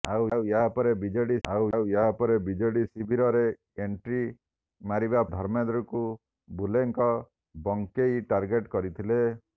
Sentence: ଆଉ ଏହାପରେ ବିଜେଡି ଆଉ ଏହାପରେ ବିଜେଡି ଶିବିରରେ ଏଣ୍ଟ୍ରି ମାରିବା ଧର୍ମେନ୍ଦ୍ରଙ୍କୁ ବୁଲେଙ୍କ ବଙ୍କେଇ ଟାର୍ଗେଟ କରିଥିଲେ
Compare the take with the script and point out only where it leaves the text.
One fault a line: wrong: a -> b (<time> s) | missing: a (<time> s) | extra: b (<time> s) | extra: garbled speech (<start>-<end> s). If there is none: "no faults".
no faults